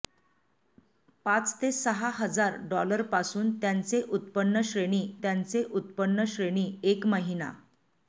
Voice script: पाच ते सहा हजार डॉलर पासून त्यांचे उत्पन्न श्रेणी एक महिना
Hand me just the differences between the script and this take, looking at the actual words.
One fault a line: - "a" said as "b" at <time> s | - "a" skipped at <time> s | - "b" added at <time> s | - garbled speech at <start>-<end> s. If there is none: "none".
- "त्यांचे उत्पन्न श्रेणी" added at 5.2 s